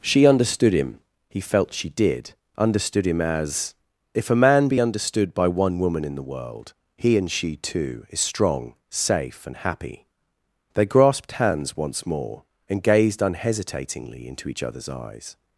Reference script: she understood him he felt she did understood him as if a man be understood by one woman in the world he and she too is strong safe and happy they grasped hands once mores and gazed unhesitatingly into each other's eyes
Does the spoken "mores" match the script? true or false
false